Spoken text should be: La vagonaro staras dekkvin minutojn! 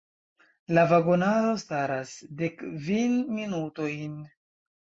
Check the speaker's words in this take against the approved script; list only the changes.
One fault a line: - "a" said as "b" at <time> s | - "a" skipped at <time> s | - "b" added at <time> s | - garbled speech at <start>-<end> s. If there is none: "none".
none